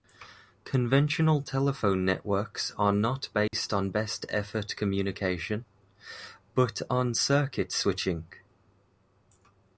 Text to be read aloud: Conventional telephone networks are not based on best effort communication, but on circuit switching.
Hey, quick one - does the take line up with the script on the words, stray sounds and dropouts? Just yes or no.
no